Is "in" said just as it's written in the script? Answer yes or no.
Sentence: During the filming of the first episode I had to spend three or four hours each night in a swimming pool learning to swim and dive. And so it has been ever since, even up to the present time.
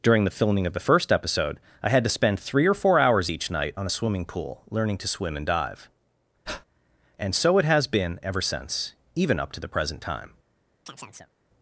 no